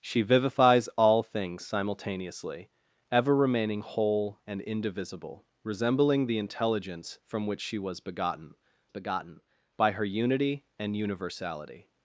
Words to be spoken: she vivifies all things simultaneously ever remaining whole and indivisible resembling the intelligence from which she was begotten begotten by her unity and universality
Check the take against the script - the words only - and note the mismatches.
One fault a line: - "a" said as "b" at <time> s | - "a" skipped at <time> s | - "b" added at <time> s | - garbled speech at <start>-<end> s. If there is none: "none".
none